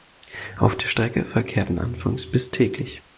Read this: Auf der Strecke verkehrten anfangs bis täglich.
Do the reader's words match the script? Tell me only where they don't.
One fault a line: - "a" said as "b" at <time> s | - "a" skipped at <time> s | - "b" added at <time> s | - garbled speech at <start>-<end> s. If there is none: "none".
none